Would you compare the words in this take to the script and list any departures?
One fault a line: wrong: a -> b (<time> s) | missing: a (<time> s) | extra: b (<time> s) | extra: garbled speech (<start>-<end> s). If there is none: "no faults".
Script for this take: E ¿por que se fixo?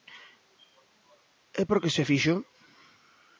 no faults